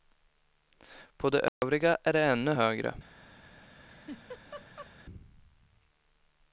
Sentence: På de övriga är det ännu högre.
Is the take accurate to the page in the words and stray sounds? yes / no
no